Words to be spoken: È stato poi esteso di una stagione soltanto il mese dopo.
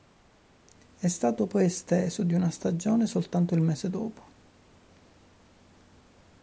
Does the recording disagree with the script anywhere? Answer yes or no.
no